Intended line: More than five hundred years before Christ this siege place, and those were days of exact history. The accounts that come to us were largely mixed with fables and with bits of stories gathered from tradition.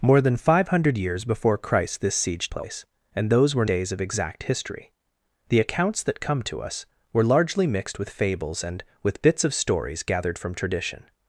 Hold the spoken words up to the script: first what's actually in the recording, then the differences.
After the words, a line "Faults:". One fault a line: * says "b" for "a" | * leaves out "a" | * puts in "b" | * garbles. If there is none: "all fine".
More than five hundred years before Christ this siege place, and those were days of exact history. The accounts that come to us were largely mixed with fables and with bits of stories gathered from tradition.
Faults:
all fine